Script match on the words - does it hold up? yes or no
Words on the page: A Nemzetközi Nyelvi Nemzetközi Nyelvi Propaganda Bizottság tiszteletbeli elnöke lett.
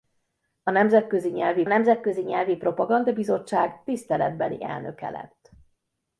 yes